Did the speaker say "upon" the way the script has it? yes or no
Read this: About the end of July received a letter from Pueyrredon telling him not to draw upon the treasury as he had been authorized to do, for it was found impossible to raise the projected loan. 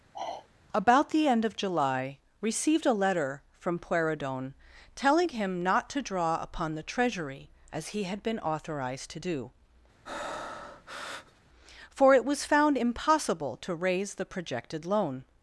yes